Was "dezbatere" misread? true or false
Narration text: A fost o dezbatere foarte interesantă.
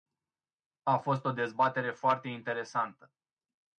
false